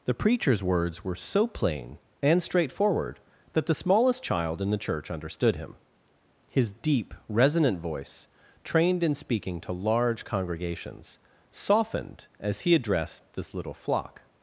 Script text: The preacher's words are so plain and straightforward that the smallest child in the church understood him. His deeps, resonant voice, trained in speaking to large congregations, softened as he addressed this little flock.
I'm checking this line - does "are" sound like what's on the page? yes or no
no